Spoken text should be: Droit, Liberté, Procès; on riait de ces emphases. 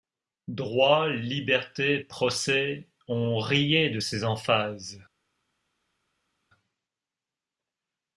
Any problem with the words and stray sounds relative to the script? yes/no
no